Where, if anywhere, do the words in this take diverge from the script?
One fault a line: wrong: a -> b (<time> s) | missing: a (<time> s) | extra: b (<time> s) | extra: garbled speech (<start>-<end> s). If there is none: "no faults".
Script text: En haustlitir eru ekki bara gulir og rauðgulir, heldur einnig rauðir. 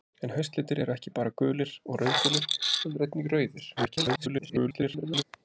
extra: garbled speech (3.8-5.2 s)